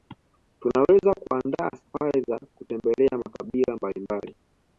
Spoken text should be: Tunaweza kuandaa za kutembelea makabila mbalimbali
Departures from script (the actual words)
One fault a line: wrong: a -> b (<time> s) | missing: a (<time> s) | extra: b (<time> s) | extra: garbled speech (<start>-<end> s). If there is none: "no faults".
extra: safari (1.7 s)